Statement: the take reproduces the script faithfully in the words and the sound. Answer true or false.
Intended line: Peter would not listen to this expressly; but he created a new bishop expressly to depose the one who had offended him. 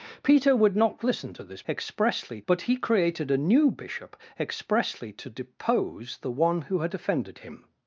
true